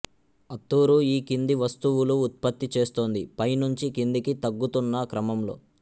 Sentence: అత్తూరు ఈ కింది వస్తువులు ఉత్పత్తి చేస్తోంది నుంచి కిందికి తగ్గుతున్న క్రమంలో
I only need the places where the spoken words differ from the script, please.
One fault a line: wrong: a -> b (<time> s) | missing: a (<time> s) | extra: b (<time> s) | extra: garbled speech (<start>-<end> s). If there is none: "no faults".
extra: పై (3.4 s)